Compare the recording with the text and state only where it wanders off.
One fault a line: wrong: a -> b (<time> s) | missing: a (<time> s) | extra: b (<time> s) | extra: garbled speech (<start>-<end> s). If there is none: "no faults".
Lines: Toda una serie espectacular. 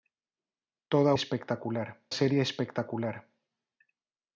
wrong: una -> espectacular (1.1 s)